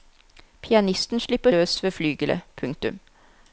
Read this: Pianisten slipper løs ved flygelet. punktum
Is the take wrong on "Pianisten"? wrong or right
right